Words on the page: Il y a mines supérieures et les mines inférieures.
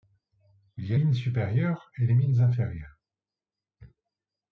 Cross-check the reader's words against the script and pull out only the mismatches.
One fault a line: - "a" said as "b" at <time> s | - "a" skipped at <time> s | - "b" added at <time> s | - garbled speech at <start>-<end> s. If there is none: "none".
none